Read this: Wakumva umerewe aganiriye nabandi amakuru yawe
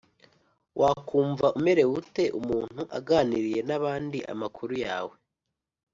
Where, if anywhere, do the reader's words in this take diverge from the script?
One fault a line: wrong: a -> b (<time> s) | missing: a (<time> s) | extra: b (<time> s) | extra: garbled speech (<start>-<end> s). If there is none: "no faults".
extra: ute umuntu (2.0 s)